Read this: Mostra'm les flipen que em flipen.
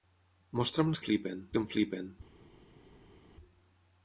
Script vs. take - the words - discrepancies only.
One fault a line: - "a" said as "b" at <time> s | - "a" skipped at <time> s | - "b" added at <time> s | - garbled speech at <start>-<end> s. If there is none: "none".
none